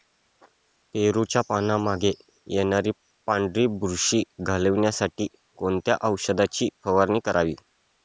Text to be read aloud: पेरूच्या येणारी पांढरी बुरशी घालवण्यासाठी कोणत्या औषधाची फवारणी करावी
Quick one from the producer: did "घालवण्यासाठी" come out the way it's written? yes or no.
yes